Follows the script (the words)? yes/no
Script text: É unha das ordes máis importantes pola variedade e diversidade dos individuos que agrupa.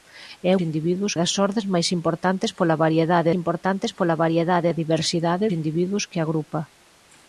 no